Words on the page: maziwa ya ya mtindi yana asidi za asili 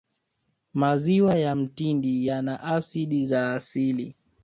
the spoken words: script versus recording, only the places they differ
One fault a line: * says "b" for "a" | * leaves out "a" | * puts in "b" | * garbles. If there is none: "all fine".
* leaves out "ya"